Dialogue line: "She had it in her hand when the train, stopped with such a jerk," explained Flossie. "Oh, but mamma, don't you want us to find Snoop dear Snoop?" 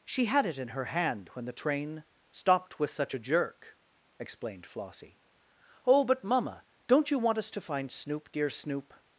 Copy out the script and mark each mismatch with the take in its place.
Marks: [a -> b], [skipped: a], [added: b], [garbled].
"She had it in her hand when the train, stopped with such a jerk," explained Flossie. "Oh, but mamma, don't you want us to find Snoop dear Snoop?"